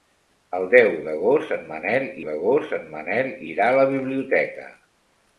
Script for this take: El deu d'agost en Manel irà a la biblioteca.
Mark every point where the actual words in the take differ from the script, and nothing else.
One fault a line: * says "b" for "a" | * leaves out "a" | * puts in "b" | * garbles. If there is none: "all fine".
* puts in "d'agost en Manel"